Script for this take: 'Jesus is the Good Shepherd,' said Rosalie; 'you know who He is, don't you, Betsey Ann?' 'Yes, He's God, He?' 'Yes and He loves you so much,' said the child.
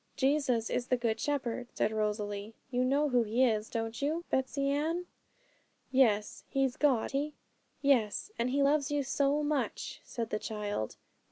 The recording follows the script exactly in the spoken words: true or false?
true